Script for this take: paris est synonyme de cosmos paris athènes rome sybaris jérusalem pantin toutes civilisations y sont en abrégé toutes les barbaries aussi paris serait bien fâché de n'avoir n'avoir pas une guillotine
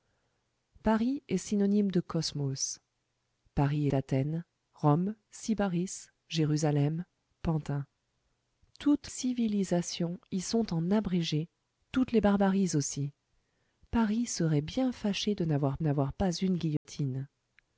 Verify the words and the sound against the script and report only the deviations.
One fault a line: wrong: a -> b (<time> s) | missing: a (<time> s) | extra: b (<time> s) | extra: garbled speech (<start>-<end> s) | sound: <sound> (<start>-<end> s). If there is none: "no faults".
sound: dropout (16.8-16.9 s)